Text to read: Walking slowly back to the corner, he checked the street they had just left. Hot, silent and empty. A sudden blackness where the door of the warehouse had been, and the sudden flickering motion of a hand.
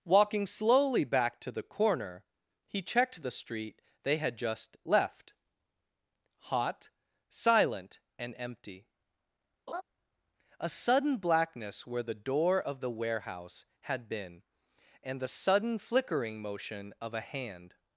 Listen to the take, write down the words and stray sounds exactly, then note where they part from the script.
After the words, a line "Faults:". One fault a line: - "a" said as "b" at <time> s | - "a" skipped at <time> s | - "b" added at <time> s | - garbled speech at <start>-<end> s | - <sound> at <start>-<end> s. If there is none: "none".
Walking slowly back to the corner, he checked the street they had just left. Hot, silent and empty. A sudden blackness where the door of the warehouse had been, and the sudden flickering motion of a hand.
Faults:
- laugh at 9.7-9.8 s